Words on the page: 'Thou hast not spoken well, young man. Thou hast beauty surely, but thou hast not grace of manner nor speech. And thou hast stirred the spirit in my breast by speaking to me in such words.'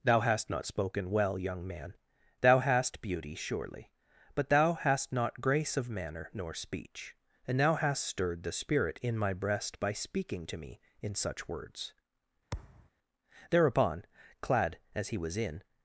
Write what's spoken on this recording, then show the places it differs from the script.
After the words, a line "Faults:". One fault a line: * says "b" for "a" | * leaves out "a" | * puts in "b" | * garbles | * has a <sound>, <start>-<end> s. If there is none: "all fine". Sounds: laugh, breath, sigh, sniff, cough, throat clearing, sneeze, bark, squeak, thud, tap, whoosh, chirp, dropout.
'Thou hast not spoken well, young man. Thou hast beauty surely, but thou hast not grace of manner nor speech. And thou hast stirred the spirit in my breast by speaking to me in such words.' Thereupon, clad as he was in
Faults:
* has a thud, 12.5-12.9 s
* puts in "Thereupon clad as he was in"